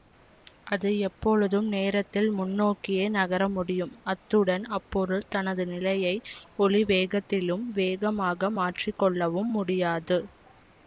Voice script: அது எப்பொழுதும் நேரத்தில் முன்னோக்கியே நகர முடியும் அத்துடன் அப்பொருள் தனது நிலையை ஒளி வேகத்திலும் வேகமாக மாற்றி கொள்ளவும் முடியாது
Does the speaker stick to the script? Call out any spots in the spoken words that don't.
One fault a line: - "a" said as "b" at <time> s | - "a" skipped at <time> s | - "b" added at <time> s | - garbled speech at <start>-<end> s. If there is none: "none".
none